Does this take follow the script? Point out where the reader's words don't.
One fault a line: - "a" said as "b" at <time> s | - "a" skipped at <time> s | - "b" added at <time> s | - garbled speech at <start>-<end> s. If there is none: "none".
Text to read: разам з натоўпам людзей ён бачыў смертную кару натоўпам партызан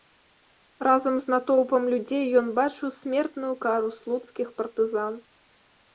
- "натоўпам" said as "слуцкіх" at 4.0 s